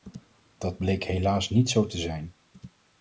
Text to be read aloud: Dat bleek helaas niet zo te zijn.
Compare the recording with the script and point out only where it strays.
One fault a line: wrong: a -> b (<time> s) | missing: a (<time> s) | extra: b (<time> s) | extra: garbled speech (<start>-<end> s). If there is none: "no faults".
no faults